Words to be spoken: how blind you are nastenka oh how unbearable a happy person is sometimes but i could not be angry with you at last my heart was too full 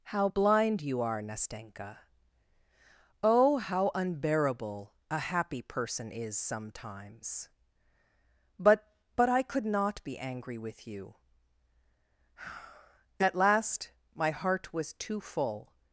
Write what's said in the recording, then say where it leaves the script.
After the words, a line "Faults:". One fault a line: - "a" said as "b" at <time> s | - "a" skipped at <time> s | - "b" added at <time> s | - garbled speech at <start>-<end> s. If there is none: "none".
how blind you are nastenka oh how unbearable a happy person is sometimes but but i could not be angry with you at last my heart was too full
Faults:
- "but" added at 9.2 s